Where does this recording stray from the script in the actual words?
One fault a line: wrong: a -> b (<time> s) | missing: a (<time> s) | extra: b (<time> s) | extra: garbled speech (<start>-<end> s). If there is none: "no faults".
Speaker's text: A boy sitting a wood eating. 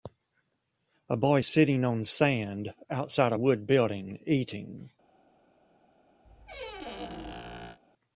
extra: on sand outside (1.8 s)
extra: building (3.7 s)